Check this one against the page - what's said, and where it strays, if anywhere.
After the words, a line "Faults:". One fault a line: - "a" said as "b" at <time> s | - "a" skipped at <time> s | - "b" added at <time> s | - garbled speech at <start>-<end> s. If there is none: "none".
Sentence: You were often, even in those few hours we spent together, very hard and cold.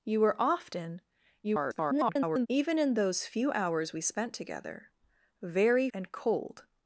You were often, [garbled] even in those few hours we spent together, very and cold.
Faults:
- garbled speech at 1.4-2.5 s
- "hard" skipped at 5.9 s